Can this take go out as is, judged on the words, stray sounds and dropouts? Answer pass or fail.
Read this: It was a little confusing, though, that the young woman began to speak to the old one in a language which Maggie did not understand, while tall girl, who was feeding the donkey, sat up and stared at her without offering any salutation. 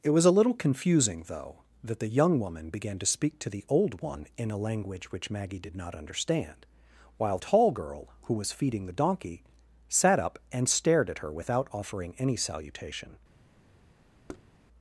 fail